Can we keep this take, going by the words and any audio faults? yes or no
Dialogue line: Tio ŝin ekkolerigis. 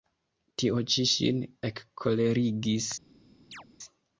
no